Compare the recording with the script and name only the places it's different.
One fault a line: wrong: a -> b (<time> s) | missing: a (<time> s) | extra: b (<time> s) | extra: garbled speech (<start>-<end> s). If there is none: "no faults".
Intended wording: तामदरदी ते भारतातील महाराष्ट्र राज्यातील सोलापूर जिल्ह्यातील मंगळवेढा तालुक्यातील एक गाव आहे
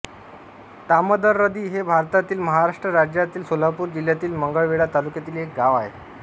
wrong: ते -> हे (1.7 s)